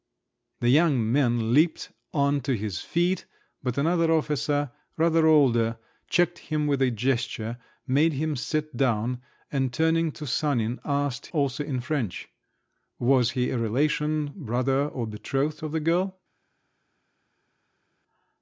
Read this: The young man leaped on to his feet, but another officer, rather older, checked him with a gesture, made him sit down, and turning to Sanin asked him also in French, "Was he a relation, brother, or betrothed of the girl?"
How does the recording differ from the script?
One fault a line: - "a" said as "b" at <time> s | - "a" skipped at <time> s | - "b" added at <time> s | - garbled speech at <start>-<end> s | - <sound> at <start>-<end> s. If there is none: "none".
- "him" skipped at 11.3 s